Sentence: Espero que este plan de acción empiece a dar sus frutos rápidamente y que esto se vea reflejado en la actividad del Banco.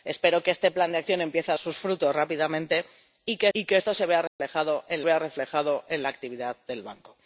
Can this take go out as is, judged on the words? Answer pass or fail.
fail